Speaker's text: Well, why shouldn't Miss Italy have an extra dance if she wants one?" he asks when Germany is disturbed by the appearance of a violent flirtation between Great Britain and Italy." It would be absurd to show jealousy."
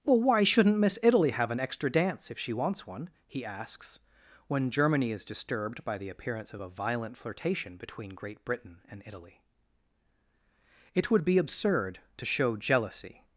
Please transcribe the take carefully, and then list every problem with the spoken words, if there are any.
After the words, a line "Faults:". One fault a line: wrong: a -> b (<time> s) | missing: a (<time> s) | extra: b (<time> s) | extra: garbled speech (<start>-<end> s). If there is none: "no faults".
Well, why shouldn't Miss Italy have an extra dance if she wants one?" he asks when Germany is disturbed by the appearance of a violent flirtation between Great Britain and Italy." It would be absurd to show jealousy."
Faults:
no faults